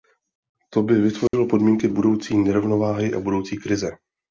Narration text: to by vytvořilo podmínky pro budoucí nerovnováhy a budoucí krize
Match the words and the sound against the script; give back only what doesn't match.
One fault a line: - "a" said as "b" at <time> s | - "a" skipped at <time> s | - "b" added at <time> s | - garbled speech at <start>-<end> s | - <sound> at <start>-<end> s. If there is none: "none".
- dropout at 1.3-1.3 s
- "pro" skipped at 1.9 s